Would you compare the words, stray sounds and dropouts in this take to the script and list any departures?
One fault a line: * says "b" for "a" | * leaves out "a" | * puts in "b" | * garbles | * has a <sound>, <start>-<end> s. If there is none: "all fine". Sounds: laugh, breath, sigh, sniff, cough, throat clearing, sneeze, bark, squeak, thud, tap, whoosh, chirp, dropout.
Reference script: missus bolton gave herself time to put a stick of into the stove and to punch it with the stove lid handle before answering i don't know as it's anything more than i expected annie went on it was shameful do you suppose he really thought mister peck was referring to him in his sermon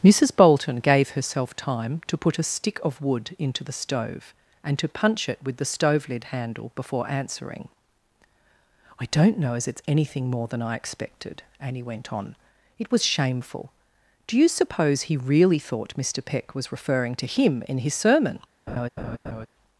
* puts in "wood"
* has a laugh, 18.7-19.5 s